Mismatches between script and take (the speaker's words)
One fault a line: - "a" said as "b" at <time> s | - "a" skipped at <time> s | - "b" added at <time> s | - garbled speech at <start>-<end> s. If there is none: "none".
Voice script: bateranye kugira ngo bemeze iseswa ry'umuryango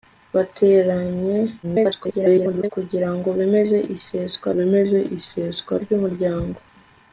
- garbled speech at 1.6-2.7 s
- "bemeze iseswa" added at 4.6 s